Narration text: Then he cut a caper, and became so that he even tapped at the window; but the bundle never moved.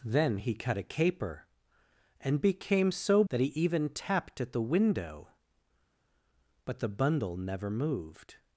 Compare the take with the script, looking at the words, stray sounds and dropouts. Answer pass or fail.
pass